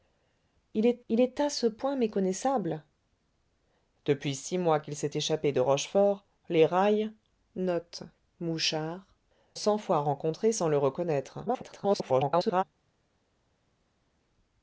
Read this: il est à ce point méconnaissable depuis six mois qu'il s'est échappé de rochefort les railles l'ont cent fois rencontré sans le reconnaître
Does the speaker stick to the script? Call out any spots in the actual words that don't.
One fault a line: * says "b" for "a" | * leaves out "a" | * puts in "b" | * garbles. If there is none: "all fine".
* puts in "il est"
* leaves out "l'ont"
* garbles